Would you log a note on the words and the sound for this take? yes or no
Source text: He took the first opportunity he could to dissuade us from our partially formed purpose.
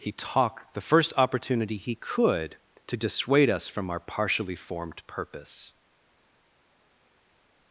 yes